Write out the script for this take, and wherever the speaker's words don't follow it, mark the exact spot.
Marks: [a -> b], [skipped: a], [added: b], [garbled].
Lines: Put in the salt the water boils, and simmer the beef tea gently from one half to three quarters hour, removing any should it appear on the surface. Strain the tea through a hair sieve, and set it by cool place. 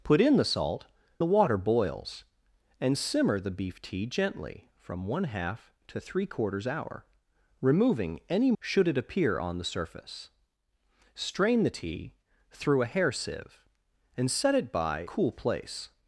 Put in the salt the water boils, and simmer the beef tea gently from one half to three quarters hour, removing any should it appear on the surface. Strain the tea through a hair sieve, and set it by cool place.